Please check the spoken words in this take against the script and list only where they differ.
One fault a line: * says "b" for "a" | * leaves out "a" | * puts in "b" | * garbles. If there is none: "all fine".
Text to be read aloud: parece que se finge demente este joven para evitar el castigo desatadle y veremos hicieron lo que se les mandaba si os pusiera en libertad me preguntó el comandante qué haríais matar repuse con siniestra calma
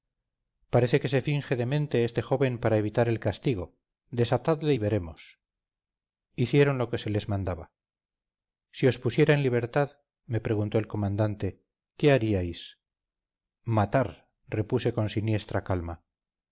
all fine